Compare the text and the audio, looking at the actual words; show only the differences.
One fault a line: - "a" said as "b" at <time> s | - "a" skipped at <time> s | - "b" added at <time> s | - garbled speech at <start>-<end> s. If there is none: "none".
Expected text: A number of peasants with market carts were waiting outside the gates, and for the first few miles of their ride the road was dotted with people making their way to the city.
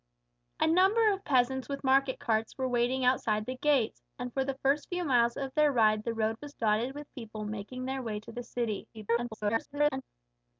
- garbled speech at 8.9-10.0 s